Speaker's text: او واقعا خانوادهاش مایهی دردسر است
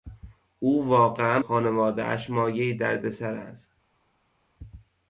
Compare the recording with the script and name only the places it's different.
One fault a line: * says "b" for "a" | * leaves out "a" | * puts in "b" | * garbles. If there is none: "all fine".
all fine